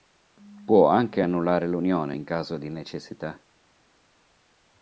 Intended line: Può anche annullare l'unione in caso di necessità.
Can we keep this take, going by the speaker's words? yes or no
yes